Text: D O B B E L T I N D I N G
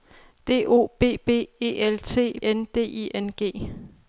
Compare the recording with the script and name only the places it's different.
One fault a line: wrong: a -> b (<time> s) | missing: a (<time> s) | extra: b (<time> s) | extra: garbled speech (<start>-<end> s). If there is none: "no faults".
no faults